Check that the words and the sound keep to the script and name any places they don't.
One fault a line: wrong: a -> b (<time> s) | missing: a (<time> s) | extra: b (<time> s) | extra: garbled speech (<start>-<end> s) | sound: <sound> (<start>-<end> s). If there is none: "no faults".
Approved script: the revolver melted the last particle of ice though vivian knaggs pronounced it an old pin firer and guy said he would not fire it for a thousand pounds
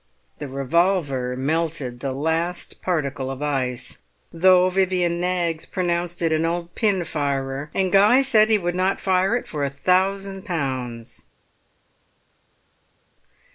no faults